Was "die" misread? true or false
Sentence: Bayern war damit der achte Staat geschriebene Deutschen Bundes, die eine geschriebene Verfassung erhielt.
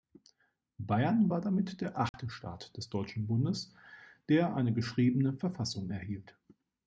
true